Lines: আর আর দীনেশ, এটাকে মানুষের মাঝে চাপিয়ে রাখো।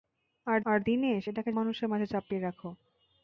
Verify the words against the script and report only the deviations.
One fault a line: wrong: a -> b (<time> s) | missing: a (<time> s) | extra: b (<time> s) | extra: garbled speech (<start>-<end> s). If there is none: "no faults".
no faults